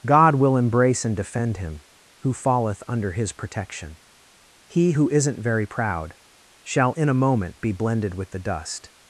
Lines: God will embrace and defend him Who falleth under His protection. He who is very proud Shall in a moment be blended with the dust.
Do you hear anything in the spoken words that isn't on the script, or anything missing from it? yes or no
yes